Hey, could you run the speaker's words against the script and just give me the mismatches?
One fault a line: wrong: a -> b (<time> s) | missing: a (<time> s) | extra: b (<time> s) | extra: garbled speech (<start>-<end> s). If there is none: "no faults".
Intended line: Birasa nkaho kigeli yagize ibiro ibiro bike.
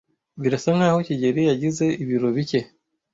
missing: ibiro (2.3 s)